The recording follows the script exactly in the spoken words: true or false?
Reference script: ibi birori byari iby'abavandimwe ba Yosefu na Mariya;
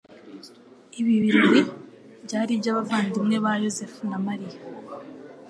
true